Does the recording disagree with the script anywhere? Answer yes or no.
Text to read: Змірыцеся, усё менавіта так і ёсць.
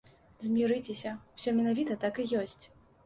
no